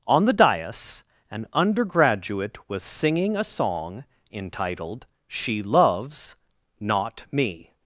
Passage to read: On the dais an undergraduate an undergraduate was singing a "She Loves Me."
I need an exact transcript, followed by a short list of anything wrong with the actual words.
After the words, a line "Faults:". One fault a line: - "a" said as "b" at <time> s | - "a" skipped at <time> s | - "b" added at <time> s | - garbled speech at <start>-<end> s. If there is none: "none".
On the dais an undergraduate was singing a song entitled "She Loves Not Me."
Faults:
- "an undergraduate" skipped at 2.6 s
- "song entitled" added at 3.4 s
- "Not" added at 6.8 s